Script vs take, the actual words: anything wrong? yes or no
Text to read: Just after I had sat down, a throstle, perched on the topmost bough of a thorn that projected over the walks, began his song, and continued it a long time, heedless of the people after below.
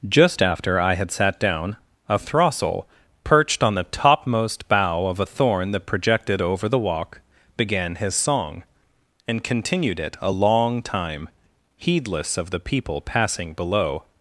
yes